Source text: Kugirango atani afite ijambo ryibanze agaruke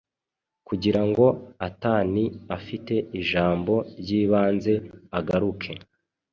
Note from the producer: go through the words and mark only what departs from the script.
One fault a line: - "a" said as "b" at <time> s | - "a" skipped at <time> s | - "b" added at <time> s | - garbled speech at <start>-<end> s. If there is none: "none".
none